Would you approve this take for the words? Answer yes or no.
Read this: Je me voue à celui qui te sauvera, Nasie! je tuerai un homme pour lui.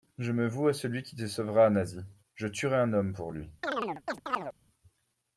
yes